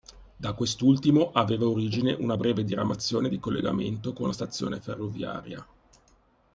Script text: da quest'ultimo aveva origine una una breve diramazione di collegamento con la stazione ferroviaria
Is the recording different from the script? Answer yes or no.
yes